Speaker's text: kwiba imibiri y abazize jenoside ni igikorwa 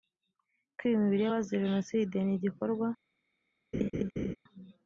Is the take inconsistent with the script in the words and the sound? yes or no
yes